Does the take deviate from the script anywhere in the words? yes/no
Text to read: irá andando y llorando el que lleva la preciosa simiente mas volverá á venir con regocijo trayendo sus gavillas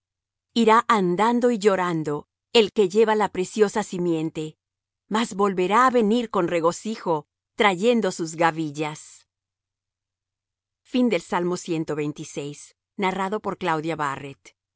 no